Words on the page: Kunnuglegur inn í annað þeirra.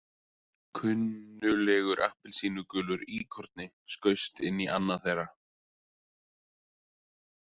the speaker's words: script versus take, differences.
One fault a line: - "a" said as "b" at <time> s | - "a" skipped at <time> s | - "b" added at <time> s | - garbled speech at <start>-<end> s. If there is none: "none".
- "appelsínugulur íkorni skaust" added at 2.1 s